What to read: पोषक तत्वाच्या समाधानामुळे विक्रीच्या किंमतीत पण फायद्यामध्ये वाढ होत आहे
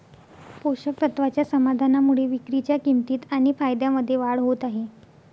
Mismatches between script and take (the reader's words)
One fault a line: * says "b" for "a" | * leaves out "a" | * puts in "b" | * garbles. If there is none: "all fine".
* says "आणि" for "पण"